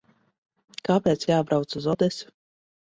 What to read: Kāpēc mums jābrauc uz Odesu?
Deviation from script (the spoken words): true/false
true